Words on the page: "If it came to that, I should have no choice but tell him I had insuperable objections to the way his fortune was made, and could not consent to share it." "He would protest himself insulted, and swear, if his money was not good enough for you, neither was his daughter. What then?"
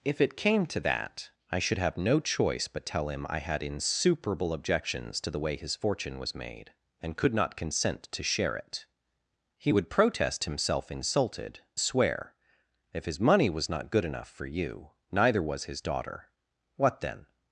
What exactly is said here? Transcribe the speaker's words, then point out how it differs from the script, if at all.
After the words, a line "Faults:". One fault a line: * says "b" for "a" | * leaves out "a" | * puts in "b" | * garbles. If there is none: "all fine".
"If it came to that, I should have no choice but tell him I had insuperable objections to the way his fortune was made, and could not consent to share it." "He would protest himself insulted, swear, if his money was not good enough for you, neither was his daughter. What then?"
Faults:
* leaves out "and"